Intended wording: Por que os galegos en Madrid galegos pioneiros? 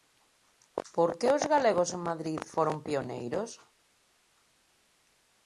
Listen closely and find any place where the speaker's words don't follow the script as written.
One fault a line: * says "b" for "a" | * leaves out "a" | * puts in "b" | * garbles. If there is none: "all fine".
* says "foron" for "galegos"